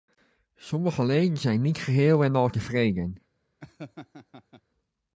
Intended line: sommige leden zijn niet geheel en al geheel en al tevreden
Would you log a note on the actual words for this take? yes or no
yes